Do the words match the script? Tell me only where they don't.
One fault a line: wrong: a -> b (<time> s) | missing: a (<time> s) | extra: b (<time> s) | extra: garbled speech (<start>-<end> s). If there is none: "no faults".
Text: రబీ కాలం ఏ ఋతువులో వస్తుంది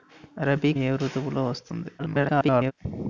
missing: కాలం (0.7 s)
extra: garbled speech (2.0-2.7 s)